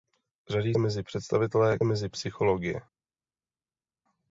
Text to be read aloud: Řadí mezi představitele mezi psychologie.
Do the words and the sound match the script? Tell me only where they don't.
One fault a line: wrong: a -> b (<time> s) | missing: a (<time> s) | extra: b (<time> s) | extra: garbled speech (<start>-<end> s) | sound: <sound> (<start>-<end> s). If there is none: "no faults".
no faults